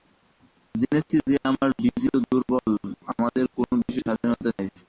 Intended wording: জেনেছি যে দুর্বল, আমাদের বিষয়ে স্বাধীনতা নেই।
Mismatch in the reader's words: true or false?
true